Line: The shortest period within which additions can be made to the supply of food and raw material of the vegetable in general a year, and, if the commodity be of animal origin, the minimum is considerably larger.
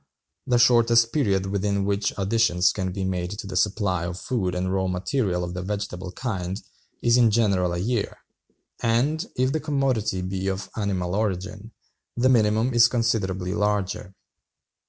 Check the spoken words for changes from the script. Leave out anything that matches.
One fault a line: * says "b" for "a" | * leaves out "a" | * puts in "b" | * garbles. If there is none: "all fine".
* puts in "kind is"